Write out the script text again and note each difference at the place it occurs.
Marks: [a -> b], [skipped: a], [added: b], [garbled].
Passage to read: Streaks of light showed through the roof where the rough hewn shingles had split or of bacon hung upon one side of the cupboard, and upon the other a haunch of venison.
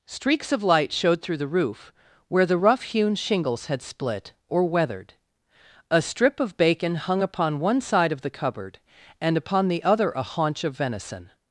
Streaks of light showed through the roof where the rough hewn shingles had split or [added: weathered A strip] of bacon hung upon one side of the cupboard, and upon the other a haunch of venison.